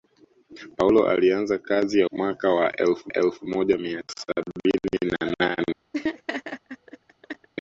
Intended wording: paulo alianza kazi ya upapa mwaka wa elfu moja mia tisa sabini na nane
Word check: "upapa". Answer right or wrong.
wrong